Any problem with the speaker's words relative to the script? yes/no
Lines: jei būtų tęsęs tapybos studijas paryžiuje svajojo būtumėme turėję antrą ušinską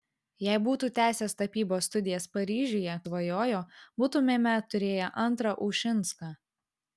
no